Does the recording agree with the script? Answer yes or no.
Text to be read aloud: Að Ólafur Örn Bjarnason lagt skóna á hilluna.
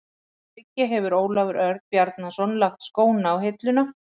no